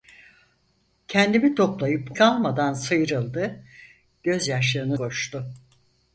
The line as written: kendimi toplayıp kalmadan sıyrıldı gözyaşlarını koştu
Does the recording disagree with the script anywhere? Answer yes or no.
no